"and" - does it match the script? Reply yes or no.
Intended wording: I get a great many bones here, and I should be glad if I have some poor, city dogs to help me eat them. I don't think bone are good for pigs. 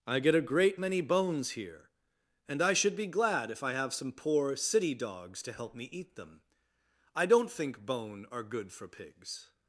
yes